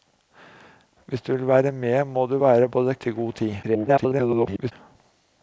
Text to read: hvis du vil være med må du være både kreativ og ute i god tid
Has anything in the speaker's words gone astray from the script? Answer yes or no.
yes